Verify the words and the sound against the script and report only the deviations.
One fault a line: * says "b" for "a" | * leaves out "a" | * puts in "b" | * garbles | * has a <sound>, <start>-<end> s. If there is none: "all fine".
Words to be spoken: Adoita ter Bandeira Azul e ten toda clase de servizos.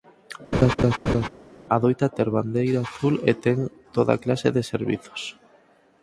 * has a laugh, 0.5-1.3 s